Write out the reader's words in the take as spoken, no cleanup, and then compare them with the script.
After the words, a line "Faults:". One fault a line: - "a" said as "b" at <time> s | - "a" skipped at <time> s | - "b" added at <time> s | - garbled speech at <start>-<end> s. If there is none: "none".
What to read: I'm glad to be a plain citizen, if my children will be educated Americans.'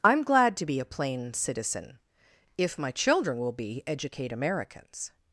I'm glad to be a plain citizen, if my children will be educate Americans.'
Faults:
- "educated" said as "educate" at 3.8 s